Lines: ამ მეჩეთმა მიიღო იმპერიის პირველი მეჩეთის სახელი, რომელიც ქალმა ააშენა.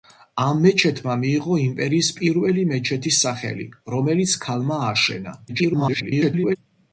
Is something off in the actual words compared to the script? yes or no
yes